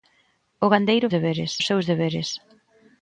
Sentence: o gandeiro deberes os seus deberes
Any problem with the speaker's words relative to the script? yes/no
no